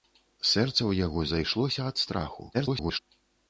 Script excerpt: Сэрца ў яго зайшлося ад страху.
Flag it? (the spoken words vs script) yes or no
yes